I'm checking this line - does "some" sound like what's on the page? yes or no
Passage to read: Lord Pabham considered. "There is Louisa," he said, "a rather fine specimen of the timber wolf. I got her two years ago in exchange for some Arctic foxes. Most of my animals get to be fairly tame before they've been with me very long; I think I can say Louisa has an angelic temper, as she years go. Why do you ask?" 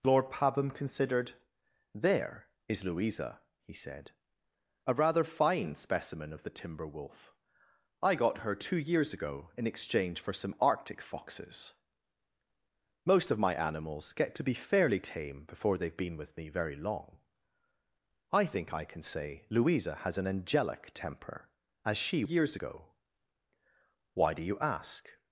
yes